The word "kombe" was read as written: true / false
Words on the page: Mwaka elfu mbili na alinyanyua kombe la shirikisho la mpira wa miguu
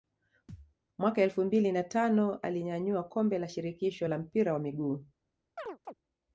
true